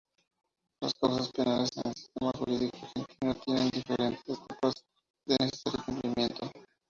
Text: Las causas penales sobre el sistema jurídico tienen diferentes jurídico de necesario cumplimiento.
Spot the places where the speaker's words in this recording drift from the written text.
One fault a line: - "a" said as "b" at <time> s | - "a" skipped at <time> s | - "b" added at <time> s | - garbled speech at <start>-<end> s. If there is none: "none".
- "sobre" said as "en" at 1.8 s
- "argentino" added at 2.8 s
- "jurídico" said as "etapas" at 4.3 s